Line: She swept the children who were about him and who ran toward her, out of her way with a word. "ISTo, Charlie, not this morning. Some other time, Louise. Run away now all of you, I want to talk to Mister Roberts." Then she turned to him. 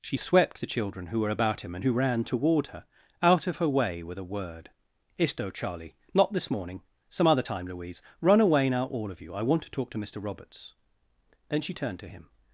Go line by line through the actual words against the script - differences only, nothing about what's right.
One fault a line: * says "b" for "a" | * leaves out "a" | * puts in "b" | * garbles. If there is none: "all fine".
all fine